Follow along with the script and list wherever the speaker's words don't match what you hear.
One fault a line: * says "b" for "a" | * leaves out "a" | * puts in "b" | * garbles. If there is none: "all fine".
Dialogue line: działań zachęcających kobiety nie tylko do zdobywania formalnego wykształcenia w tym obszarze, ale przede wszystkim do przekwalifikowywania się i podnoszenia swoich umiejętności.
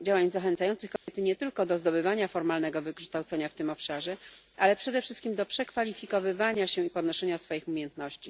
all fine